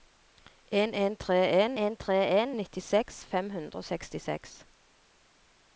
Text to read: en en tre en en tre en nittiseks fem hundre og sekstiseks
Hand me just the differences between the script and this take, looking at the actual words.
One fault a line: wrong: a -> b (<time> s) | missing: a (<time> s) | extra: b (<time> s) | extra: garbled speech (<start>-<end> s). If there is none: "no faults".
no faults